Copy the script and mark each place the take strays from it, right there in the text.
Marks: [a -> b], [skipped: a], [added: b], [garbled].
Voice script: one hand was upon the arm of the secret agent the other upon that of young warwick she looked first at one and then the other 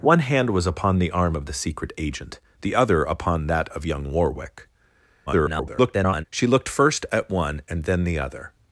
one hand was upon the arm of the secret agent the other upon that of young warwick [garbled] she looked first at one and then the other